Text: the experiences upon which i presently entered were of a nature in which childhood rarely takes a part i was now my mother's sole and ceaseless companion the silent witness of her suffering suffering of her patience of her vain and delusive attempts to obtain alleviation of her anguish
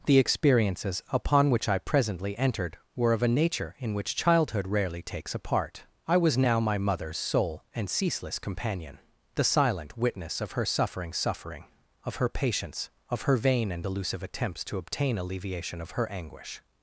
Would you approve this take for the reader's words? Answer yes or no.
yes